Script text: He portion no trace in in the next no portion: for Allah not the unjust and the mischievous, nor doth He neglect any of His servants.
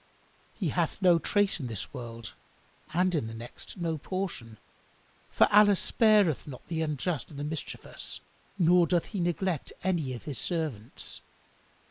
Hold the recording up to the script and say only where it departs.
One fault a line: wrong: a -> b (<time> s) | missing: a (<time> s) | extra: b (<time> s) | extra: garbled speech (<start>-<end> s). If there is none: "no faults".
wrong: portion -> hath (0.7 s)
extra: this world and (1.7 s)
extra: spareth (5.8 s)